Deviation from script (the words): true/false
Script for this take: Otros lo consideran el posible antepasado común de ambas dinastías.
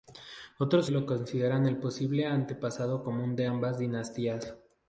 false